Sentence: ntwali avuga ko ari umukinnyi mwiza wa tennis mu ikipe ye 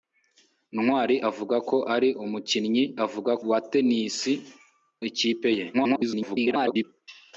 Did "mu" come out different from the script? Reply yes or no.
yes